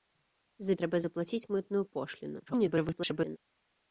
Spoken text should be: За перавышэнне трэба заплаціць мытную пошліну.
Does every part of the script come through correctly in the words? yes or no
no